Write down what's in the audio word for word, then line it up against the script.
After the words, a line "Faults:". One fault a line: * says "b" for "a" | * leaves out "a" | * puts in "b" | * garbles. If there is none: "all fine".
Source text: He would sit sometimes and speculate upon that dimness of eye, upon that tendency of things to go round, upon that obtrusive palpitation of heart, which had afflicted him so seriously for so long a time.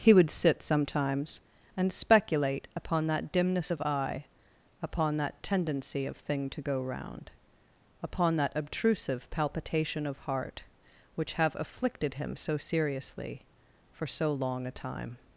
He would sit sometimes and speculate upon that dimness of eye, upon that tendency of thing to go round, upon that obtrusive palpitation of heart, which have afflicted him so seriously for so long a time.
Faults:
* says "thing" for "things"
* says "have" for "had"